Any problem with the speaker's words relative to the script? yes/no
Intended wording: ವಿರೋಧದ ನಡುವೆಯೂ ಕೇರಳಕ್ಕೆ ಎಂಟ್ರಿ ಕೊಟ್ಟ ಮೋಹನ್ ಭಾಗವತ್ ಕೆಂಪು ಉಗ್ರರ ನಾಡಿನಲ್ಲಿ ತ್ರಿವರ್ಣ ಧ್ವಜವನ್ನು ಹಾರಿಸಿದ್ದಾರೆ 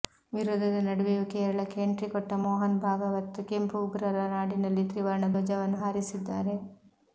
no